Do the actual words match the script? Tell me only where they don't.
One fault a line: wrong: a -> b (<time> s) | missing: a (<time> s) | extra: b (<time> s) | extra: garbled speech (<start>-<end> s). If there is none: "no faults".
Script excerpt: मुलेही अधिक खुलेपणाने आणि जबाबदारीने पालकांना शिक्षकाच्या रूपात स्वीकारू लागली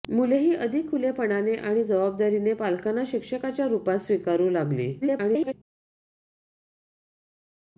extra: garbled speech (5.0-5.5 s)